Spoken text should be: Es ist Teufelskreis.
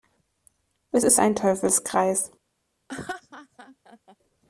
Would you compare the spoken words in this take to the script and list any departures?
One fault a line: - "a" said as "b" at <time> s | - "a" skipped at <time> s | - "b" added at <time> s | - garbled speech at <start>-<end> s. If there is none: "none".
- "ein" added at 1.2 s